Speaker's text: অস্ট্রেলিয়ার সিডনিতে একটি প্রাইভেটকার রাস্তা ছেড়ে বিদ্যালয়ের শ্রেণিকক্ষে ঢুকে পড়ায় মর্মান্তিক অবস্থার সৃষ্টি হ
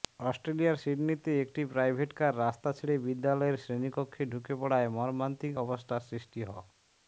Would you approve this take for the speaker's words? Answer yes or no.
yes